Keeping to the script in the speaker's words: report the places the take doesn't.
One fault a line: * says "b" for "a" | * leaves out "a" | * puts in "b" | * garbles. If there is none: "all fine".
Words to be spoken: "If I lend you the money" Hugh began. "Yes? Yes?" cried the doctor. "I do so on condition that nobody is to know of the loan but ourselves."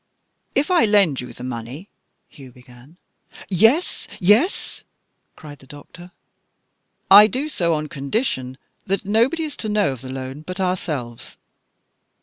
all fine